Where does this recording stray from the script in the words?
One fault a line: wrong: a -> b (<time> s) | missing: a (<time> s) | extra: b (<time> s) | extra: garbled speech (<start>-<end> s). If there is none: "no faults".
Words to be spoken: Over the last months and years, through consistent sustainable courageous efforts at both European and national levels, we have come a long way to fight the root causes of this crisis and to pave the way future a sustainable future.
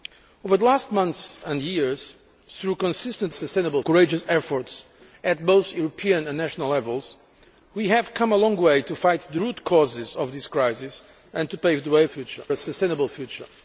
no faults